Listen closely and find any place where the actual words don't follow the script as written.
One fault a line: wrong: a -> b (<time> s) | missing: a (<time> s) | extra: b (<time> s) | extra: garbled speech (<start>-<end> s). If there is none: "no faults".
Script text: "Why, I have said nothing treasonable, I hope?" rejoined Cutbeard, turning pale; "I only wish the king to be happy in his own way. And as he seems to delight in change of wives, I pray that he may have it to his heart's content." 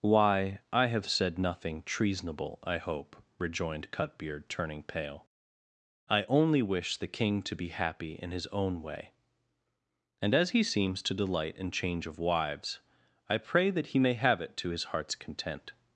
no faults